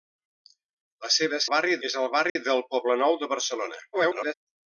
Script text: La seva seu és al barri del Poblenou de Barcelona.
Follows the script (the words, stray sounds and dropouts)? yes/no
no